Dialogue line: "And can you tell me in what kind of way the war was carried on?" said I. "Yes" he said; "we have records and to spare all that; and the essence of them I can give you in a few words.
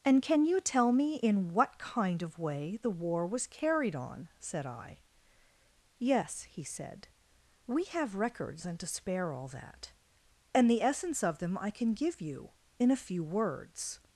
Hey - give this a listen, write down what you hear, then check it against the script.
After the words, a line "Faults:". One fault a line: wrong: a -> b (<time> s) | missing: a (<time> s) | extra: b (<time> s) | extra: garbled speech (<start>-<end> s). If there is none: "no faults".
"And can you tell me in what kind of way the war was carried on?" said I. "Yes" he said; "we have records and to spare all that; and the essence of them I can give you in a few words.
Faults:
no faults